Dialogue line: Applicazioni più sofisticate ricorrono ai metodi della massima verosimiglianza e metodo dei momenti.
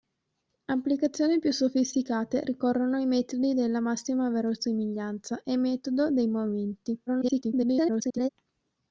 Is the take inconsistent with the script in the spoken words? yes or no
yes